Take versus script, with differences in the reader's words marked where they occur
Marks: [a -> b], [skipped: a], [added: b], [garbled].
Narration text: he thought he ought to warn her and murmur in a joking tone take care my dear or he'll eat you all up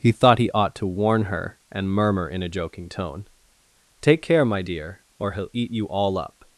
he thought he ought to warn her and murmur in a joking tone take care my dear or he'll eat you all up